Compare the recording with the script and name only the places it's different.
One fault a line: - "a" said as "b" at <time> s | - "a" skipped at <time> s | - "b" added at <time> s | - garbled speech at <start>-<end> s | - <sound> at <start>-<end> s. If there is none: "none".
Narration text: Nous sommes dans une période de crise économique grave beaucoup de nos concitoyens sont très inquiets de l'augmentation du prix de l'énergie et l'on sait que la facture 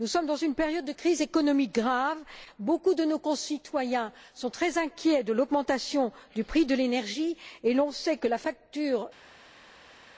none